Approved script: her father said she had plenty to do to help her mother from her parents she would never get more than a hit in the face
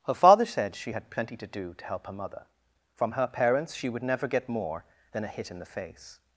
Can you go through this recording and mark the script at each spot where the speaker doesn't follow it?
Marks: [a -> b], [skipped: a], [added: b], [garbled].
her father said she had plenty to do to help her mother from her parents she would never get more than a hit in the face